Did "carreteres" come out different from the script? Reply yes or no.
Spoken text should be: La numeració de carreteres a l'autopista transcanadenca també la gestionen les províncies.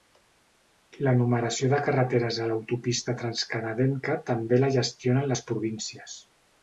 no